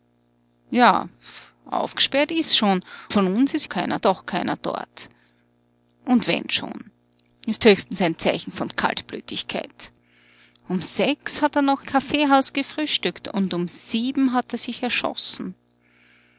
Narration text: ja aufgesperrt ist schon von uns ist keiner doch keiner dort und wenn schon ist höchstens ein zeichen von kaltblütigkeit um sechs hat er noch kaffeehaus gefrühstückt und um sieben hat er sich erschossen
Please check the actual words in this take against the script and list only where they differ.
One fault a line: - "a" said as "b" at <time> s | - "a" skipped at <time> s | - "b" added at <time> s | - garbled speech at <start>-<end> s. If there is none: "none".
none